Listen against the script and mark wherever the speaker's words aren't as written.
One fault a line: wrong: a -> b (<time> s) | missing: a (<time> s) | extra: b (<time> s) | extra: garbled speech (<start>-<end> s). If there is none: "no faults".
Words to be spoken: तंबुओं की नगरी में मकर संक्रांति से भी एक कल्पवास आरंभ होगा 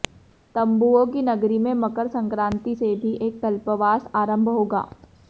no faults